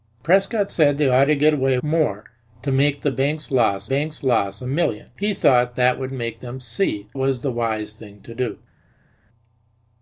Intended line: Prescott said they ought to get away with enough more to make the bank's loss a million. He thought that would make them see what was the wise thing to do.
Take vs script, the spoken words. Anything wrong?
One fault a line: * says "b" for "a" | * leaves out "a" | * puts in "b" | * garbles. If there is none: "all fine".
* leaves out "with enough"
* puts in "bank's loss"
* leaves out "what"